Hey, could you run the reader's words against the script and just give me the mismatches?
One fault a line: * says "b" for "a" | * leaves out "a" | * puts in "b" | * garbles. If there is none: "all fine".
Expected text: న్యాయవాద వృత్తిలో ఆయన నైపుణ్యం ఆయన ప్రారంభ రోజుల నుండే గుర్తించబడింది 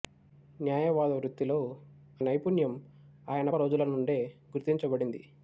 * leaves out "ఆయన"
* leaves out "ప్రారంభ"